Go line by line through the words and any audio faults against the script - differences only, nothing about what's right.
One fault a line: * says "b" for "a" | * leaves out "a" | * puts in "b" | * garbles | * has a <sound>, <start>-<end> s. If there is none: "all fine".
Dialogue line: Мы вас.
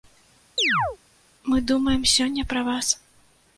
* has a chirp, 0.6-1.0 s
* puts in "думаем сёння пра"